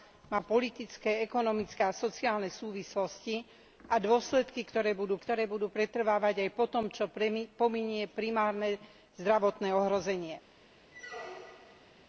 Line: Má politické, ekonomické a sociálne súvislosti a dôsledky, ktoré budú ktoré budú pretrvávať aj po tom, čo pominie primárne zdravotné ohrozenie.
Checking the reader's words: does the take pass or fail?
pass